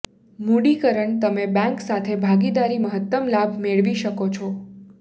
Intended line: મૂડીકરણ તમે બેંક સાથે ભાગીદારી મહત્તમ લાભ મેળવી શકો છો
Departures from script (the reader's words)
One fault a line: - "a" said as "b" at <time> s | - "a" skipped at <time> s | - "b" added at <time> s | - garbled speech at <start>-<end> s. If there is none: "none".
none